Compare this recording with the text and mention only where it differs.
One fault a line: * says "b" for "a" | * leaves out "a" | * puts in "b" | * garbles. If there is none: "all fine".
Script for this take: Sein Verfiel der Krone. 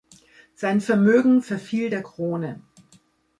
* puts in "Vermögen"